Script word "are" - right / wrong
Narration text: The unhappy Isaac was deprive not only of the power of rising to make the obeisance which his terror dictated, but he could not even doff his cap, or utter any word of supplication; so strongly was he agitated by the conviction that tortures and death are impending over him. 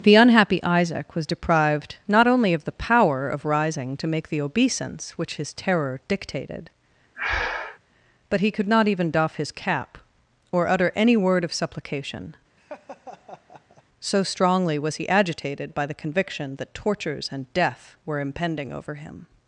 wrong